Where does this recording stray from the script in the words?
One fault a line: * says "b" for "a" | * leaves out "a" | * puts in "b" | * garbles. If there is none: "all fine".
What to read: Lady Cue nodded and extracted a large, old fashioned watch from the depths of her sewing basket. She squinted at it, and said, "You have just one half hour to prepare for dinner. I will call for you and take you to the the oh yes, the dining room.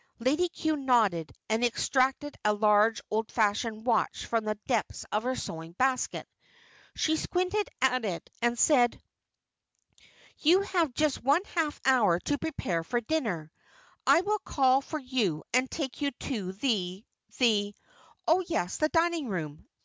all fine